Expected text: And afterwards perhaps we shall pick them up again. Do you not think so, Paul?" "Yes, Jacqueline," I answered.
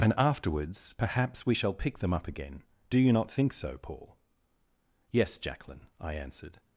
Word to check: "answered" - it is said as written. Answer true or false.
true